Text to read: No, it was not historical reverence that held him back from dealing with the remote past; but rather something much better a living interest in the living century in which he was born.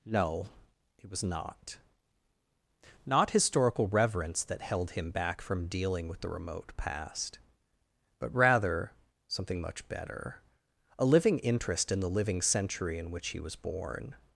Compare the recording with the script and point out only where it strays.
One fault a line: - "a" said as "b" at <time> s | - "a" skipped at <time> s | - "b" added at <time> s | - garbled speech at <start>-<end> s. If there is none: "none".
- "not" added at 3.0 s